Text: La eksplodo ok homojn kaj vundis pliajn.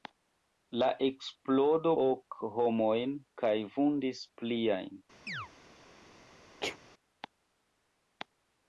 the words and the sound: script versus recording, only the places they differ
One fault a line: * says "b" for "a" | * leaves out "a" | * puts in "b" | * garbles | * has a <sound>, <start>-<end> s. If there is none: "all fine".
* has a chirp, 5.3-5.5 s
* has a sneeze, 6.6-6.8 s